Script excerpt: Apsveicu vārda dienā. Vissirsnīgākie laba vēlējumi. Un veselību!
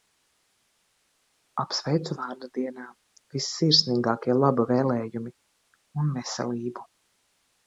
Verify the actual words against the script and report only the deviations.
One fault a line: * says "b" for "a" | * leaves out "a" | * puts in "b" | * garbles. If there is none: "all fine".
all fine